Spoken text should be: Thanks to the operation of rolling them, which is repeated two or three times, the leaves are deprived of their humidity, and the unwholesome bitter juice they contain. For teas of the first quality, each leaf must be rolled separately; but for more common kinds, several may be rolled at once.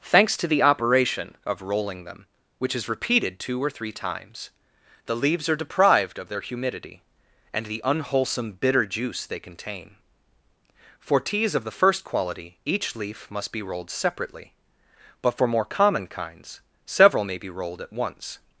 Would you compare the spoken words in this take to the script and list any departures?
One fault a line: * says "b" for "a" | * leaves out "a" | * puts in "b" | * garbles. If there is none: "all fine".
all fine